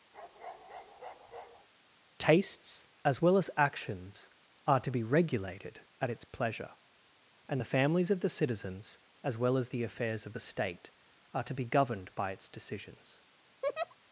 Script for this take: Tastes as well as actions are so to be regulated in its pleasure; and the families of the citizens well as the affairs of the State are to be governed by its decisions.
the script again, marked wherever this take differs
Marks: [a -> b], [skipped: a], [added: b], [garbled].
Tastes as well as actions are [skipped: so] to be regulated [in -> at] its pleasure; and the families of the citizens [added: as] well as the affairs of the State are to be governed by its decisions.